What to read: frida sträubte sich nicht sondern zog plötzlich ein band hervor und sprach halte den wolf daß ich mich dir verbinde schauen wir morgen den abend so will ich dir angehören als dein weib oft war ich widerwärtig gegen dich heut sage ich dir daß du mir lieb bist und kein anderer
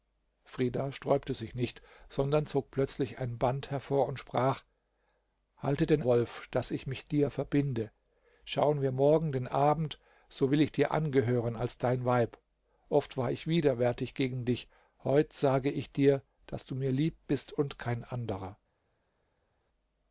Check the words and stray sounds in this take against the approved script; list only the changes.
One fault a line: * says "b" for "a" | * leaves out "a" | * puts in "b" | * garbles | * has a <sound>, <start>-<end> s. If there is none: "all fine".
all fine